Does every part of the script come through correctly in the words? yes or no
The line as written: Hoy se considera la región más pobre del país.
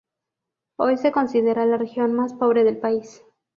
yes